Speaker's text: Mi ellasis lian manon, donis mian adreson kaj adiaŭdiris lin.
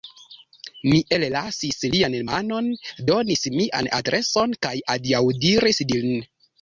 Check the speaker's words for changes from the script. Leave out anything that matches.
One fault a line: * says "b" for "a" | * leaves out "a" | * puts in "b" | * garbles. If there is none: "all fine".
all fine